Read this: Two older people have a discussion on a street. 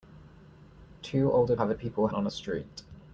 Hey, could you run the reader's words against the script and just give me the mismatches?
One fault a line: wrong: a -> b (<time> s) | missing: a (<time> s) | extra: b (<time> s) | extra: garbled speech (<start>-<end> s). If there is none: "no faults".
missing: people (1.6 s)
wrong: discussion -> people (1.7 s)